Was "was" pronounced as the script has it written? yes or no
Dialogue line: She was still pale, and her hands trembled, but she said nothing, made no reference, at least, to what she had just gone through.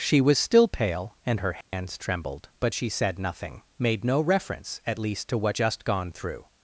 yes